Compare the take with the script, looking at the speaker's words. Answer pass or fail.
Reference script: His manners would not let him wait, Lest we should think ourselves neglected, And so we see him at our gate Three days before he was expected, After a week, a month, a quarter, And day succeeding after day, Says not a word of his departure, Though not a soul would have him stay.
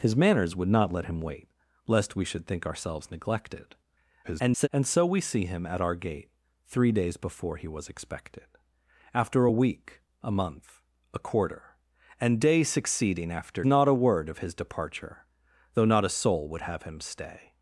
fail